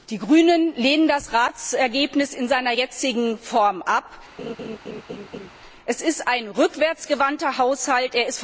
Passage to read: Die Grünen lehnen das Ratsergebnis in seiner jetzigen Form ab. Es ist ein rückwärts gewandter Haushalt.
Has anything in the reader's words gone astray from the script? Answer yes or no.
no